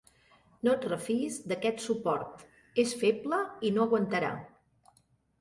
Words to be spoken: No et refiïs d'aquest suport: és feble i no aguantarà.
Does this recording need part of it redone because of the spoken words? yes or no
no